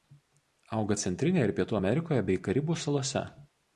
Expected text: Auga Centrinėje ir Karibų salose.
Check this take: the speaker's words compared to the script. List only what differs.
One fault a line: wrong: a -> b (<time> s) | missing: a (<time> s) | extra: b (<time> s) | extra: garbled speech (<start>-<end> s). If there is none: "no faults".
extra: Pietų Amerikoje bei (1.6 s)